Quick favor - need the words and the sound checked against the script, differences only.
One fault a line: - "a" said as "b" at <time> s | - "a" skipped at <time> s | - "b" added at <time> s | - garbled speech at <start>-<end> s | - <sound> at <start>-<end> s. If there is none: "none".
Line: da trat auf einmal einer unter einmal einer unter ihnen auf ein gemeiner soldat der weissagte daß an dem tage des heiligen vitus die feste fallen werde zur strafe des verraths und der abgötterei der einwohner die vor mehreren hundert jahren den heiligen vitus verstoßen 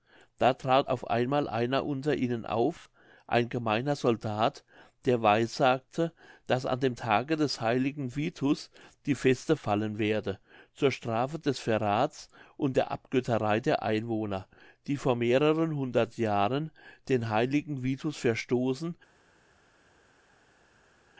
- "einmal einer unter" skipped at 2.1 s